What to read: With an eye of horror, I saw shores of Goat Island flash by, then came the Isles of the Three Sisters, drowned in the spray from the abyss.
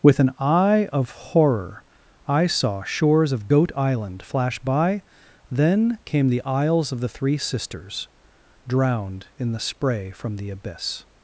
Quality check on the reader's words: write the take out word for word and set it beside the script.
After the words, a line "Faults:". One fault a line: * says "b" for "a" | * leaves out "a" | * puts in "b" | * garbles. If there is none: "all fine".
With an eye of horror, I saw shores of Goat Island flash by, then came the Isles of the Three Sisters, drowned in the spray from the abyss.
Faults:
all fine